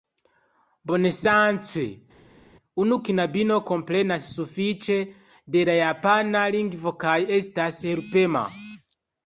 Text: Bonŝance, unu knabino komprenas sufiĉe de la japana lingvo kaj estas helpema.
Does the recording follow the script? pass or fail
pass